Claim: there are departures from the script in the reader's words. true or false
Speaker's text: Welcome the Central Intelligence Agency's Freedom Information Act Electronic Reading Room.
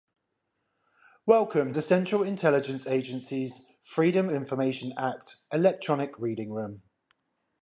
false